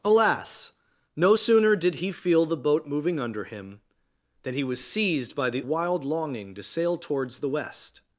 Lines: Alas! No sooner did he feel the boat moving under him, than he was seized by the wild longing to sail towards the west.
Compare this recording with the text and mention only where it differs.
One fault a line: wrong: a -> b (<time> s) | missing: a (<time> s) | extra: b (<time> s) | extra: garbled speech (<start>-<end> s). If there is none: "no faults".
no faults